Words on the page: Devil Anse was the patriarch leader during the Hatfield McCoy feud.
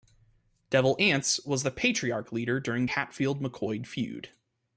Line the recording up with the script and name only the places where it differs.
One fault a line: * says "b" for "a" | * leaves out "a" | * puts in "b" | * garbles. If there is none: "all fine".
* leaves out "the"